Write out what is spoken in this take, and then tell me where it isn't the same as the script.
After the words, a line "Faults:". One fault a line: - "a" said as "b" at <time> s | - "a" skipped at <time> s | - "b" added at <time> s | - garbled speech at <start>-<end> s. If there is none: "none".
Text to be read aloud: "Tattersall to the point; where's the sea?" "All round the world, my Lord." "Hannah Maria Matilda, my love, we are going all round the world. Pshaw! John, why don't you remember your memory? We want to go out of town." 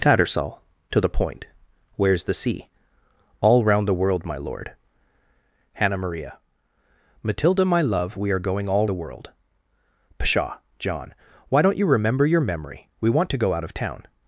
"Tattersall to the point; where's the sea?" "All round the world, my Lord." "Hannah Maria Matilda, my love, we are going all the world. Pshaw! John, why don't you remember your memory? We want to go out of town."
Faults:
- "round" skipped at 8.9 s